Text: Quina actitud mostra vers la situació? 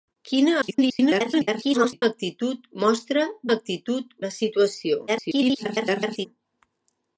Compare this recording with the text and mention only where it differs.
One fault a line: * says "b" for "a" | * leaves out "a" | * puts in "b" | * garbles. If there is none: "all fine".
* garbles
* says "actitud" for "vers"
* garbles